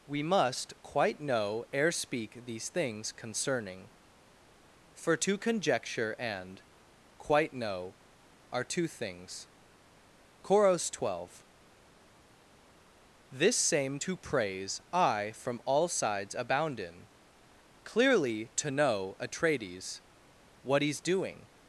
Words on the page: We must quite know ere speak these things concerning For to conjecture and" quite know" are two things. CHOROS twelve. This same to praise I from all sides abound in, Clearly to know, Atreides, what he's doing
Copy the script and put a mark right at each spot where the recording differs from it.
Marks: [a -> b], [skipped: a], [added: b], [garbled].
We must quite know ere speak these things concerning For to conjecture and" quite know" are two things. CHOROS twelve. This same to praise I from all sides abound in, Clearly to know, Atreides, what he's doing